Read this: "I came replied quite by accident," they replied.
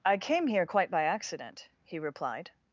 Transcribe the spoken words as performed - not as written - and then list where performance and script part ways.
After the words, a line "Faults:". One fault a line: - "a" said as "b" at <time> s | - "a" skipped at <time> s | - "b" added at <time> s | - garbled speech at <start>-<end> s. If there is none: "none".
"I came here quite by accident," he replied.
Faults:
- "replied" said as "here" at 0.5 s
- "they" said as "he" at 1.8 s